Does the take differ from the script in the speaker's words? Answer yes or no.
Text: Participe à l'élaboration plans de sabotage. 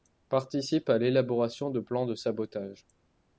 yes